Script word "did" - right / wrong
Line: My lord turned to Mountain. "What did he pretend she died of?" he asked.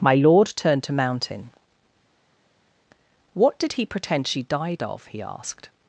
right